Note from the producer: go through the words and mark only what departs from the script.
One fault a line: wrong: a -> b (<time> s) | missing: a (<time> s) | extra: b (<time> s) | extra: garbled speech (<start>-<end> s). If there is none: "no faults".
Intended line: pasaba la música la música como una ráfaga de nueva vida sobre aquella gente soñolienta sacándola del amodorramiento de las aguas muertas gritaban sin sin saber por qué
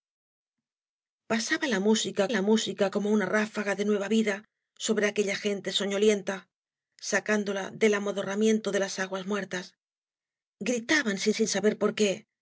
no faults